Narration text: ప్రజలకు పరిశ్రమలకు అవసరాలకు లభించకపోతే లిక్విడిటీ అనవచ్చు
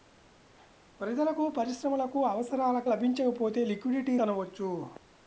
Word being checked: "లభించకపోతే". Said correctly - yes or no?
yes